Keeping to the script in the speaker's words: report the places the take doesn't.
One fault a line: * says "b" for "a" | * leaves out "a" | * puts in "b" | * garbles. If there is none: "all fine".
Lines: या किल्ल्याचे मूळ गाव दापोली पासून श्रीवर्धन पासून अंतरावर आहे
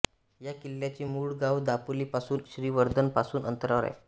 all fine